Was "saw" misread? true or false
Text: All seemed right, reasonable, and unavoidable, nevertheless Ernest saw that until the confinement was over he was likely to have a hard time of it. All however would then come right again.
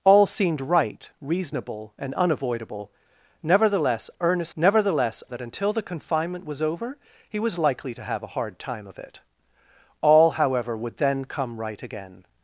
true